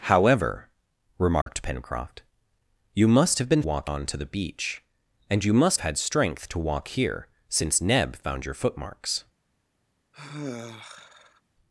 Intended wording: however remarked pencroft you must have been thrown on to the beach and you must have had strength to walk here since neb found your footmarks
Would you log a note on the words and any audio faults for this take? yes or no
yes